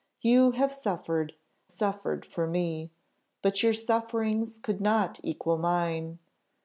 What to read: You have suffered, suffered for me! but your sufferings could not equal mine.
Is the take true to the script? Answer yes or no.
yes